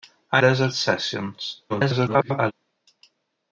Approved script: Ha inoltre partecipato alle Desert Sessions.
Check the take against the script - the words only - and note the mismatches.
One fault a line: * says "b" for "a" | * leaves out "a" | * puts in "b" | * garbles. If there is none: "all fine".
* leaves out "inoltre partecipato alle"
* garbles